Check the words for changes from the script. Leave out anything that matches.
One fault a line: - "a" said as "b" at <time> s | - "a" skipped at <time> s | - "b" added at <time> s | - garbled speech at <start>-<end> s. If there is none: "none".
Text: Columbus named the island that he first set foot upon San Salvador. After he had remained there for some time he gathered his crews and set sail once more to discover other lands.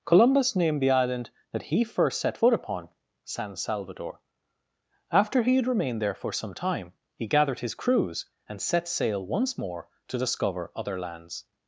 none